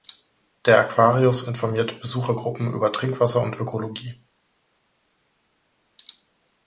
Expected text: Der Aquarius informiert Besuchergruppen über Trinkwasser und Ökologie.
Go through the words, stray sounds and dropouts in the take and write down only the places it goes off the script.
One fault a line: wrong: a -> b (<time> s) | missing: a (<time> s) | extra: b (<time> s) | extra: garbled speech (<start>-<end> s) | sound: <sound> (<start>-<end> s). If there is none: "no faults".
no faults